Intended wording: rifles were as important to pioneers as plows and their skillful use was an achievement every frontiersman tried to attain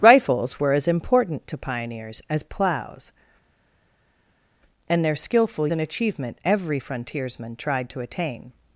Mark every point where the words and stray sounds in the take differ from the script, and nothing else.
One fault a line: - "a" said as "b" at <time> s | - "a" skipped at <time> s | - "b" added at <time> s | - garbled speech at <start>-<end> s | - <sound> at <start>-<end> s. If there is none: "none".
- "use was" skipped at 5.7 s